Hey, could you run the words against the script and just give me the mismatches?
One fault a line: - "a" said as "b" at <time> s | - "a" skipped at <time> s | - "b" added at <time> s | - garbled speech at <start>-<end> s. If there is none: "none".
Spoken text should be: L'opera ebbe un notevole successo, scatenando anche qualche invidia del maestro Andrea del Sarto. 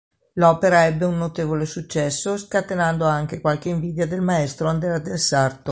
none